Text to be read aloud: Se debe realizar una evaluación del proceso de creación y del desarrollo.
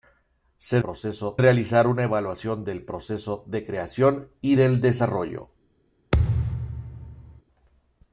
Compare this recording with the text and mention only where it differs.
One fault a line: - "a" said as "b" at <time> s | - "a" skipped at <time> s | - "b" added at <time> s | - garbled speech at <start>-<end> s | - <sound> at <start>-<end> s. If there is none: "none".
- "debe" said as "proceso" at 0.8 s
- thud at 6.1-7.4 s